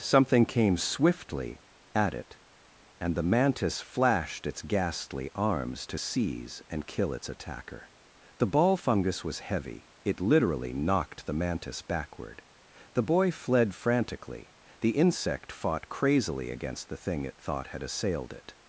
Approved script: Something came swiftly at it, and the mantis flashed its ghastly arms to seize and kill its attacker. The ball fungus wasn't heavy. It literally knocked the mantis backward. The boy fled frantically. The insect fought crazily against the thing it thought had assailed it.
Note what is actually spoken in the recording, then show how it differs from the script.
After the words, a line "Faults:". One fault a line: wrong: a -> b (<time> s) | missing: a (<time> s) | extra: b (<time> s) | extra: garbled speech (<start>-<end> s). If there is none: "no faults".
Something came swiftly at it, and the mantis flashed its ghastly arms to seize and kill its attacker. The ball fungus was heavy. It literally knocked the mantis backward. The boy fled frantically. The insect fought crazily against the thing it thought had assailed it.
Faults:
wrong: wasn't -> was (9.2 s)